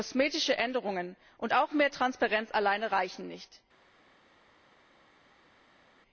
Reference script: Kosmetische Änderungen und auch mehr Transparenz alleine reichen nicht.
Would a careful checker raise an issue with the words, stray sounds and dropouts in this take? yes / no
no